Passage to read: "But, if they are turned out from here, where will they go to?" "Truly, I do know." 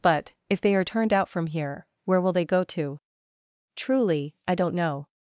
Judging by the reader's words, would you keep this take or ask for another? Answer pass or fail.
fail